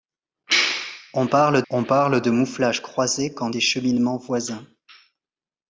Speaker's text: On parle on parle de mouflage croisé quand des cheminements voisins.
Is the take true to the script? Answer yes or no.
yes